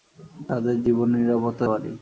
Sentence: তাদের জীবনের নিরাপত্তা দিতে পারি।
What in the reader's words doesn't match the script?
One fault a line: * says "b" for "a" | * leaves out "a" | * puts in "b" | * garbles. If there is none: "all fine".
* leaves out "দিতে"